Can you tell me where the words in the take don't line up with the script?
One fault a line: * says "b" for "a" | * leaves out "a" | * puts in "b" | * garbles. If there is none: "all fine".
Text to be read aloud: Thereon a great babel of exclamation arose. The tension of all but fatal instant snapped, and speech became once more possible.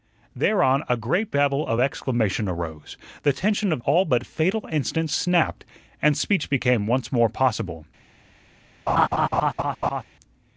all fine